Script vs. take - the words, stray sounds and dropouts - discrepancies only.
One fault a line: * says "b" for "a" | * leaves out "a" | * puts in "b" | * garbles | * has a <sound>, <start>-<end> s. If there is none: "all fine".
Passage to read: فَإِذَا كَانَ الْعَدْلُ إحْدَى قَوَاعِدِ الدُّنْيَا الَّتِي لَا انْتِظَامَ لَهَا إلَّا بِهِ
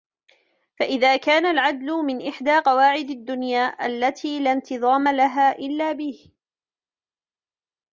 * puts in "مِنْ"